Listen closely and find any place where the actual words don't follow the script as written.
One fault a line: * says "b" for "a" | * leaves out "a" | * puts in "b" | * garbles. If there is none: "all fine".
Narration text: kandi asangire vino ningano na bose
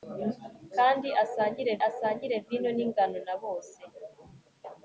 * puts in "asangire"